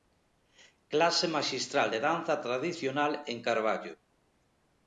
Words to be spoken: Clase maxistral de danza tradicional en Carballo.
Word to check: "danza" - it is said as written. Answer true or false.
true